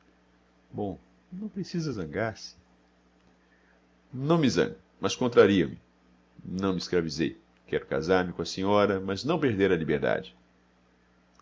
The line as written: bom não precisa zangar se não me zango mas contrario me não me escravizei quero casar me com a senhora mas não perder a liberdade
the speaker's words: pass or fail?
pass